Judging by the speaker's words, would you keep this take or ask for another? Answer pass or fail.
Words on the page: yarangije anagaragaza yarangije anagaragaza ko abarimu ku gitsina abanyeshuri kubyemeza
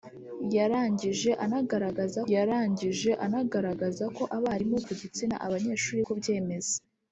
pass